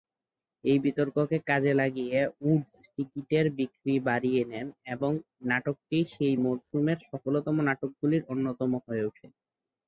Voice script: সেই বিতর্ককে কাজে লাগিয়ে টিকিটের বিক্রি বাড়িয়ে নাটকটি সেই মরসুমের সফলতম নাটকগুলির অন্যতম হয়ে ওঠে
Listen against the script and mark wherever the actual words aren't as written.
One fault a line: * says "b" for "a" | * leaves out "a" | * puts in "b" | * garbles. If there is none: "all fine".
* says "এই" for "সেই"
* puts in "উডস"
* puts in "নেন এবং"